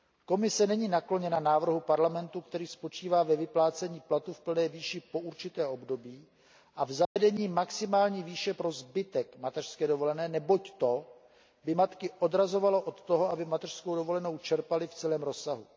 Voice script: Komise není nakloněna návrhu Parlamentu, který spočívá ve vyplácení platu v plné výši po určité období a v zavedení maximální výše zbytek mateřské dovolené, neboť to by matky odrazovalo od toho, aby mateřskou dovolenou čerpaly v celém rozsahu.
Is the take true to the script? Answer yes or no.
no